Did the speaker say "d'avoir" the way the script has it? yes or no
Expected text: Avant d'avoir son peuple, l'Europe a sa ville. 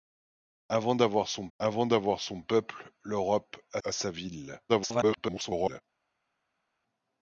yes